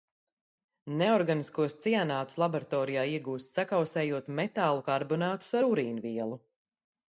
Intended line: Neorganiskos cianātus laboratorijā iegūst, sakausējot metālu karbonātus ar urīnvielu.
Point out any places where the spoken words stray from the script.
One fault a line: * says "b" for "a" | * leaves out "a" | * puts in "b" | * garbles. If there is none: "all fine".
all fine